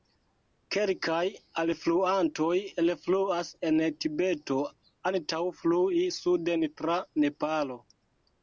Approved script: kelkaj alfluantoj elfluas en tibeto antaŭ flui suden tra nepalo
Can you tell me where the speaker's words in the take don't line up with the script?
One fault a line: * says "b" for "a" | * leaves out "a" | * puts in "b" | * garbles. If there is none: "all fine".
all fine